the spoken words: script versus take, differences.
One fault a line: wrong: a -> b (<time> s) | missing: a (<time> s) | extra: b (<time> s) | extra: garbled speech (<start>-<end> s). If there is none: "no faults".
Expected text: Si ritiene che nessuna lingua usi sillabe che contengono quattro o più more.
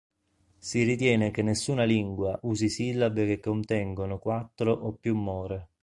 no faults